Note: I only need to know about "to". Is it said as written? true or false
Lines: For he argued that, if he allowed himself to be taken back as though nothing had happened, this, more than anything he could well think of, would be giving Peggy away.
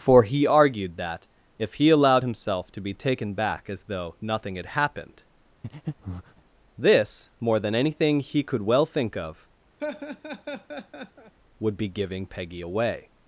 true